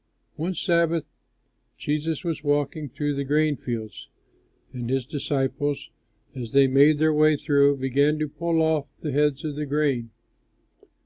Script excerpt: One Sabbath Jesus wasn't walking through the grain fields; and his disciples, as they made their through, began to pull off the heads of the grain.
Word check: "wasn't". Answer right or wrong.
wrong